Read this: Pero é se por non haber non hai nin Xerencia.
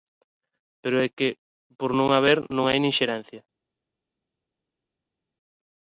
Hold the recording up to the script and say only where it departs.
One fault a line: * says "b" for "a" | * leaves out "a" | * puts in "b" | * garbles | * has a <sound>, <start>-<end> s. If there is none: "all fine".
* says "que" for "se"